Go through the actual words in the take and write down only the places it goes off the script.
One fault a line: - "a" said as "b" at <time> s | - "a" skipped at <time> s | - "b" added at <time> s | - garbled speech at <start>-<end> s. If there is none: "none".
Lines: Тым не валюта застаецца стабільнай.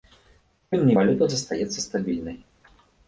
none